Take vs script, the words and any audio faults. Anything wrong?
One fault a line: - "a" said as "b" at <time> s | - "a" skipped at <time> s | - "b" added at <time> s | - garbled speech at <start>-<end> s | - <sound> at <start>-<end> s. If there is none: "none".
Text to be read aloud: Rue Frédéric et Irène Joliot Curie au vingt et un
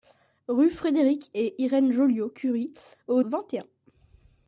none